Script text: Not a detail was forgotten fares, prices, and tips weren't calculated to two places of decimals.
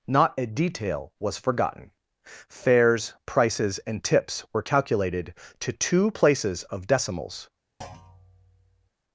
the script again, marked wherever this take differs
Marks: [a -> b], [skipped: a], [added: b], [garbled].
Not a detail was forgotten fares, prices, and tips [weren't -> were] calculated to two places of decimals.